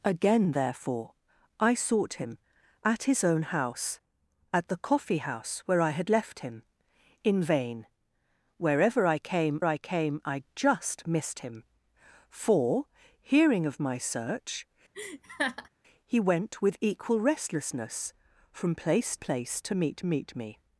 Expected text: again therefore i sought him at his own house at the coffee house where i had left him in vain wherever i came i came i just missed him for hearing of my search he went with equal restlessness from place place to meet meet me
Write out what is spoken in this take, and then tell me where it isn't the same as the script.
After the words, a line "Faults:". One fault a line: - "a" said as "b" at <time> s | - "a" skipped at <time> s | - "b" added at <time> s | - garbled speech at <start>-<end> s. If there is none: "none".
again therefore i sought him at his own house at the coffee house where i had left him in vain wherever i came i came i just missed him for hearing of my search he went with equal restlessness from place place to meet meet me
Faults:
none